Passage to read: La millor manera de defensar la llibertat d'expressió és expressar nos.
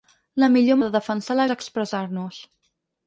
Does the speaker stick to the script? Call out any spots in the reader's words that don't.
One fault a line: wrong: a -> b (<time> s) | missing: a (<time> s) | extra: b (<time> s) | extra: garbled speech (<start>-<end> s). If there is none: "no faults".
missing: manera (0.8 s)
missing: llibertat d'expressió (1.5 s)